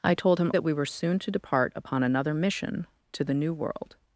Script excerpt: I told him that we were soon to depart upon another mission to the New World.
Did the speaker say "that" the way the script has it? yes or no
yes